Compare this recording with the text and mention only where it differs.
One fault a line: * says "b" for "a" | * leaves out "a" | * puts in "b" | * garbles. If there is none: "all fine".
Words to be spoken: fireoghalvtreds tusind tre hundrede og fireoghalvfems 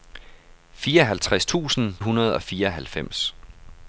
* leaves out "tre"